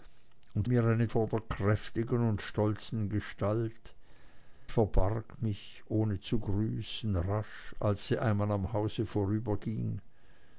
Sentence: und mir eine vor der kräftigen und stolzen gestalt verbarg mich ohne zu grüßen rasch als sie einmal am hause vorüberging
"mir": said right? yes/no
yes